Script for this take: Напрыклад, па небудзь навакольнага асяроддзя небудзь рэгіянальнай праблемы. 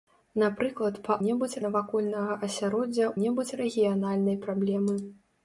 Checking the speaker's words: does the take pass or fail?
pass